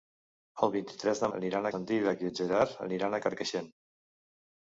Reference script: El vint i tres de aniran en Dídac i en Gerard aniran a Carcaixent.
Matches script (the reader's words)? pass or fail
pass